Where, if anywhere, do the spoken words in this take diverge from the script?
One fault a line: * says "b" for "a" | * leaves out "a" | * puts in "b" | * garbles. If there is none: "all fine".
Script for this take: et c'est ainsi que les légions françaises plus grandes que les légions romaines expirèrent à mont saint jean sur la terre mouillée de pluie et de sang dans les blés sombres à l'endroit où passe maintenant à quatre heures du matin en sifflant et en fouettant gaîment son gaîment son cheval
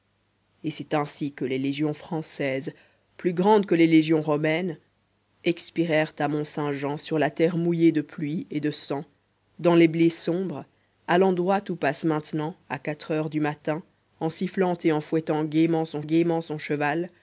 all fine